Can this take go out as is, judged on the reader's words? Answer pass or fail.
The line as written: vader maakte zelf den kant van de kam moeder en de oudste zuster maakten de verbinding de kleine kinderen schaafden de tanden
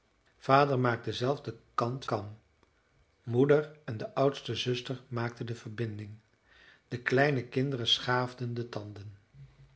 fail